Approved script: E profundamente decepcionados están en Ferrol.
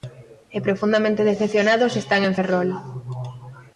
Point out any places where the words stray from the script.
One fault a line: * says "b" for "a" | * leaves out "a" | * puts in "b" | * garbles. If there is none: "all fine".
all fine